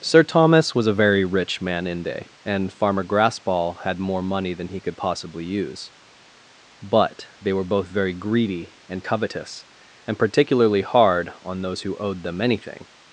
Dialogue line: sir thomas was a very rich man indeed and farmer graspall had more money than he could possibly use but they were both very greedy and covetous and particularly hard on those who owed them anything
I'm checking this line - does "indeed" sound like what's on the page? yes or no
no